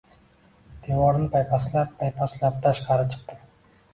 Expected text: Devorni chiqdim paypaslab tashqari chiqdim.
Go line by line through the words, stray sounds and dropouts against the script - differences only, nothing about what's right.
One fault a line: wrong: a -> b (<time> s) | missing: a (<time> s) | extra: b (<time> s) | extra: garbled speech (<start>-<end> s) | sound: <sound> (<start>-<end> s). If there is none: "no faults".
wrong: chiqdim -> paypaslab (1.3 s)